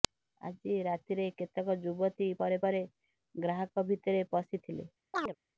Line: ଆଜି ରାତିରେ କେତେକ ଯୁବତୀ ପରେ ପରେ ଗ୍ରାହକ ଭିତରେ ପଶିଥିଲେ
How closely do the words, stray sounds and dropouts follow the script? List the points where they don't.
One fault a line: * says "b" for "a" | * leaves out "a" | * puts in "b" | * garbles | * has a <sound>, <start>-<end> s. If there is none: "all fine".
* has a chirp, 5.1-5.4 s